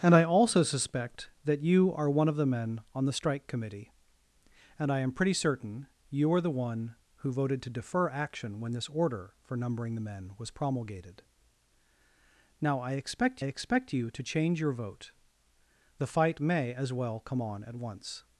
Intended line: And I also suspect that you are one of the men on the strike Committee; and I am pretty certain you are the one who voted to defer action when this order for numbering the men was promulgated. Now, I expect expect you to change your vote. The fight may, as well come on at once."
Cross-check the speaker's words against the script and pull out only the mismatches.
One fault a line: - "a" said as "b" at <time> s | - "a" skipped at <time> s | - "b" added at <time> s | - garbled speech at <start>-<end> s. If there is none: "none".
none